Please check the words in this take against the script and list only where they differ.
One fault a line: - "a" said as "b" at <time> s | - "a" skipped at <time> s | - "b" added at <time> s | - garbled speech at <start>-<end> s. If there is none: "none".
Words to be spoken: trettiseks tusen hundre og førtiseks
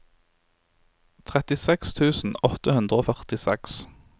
- "åtte" added at 2.5 s